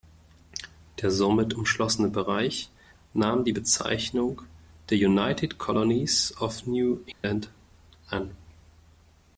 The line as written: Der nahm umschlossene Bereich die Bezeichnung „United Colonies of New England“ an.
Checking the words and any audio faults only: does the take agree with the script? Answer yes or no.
no